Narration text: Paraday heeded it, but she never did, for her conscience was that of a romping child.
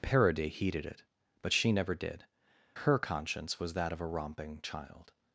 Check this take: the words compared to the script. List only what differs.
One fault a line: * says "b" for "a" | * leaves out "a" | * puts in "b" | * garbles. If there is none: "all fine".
* leaves out "for"